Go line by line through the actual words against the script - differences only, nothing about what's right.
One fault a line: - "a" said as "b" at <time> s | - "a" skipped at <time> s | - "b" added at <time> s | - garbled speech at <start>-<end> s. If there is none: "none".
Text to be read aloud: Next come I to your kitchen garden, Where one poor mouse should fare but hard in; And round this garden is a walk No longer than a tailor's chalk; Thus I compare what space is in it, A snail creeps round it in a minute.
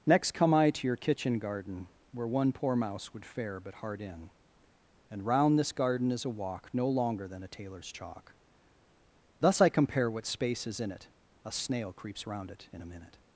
- "should" said as "would" at 3.1 s